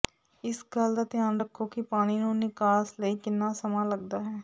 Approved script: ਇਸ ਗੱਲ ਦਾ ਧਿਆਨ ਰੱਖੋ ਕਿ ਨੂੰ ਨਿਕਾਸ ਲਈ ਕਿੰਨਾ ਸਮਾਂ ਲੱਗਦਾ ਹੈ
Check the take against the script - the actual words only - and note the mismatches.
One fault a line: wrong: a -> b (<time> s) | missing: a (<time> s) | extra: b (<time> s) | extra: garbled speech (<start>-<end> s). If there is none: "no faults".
extra: ਪਾਣੀ (1.8 s)